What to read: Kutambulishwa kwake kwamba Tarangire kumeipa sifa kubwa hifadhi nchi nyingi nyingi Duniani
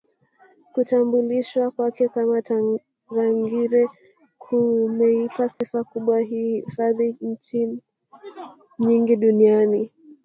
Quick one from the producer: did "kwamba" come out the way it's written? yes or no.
no